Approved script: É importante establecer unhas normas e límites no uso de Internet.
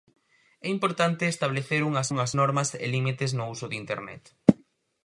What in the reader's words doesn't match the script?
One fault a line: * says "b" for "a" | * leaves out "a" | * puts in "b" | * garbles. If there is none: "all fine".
* puts in "unhas"